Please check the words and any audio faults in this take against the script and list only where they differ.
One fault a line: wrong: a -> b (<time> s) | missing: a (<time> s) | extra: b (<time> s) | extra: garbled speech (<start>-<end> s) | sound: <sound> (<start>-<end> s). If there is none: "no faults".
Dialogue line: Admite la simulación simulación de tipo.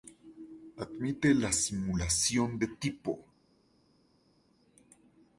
missing: simulación (2.6 s)